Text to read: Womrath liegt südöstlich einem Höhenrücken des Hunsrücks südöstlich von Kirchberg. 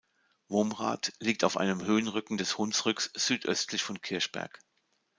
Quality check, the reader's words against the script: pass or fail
fail